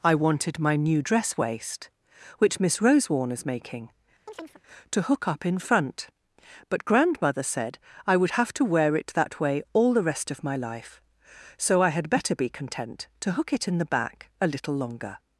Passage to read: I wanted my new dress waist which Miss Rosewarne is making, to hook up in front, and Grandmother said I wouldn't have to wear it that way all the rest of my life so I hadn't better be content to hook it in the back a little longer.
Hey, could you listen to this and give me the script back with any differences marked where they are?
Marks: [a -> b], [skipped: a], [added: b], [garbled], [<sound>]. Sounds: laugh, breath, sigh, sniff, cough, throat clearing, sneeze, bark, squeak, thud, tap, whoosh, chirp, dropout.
I wanted my new dress waist which Miss Rosewarne is making, [chirp] to hook up in front, [and -> but] Grandmother said I [wouldn't -> would] have to wear it that way all the rest of my life so I [hadn't -> had] better be content to hook it in the back a little longer.